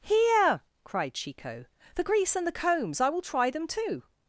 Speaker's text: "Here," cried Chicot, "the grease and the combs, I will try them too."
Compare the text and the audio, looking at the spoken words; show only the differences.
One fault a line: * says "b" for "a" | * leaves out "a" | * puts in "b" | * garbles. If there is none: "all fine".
all fine